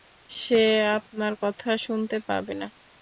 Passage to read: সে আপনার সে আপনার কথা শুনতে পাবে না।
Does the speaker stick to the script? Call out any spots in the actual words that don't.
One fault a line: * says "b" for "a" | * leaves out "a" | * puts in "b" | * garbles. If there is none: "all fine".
* leaves out "সে আপনার"